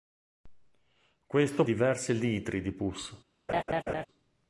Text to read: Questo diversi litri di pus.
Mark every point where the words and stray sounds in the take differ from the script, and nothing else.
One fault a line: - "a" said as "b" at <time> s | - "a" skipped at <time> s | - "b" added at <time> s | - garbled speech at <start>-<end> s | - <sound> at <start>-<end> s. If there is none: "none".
- laugh at 3.5-4.1 s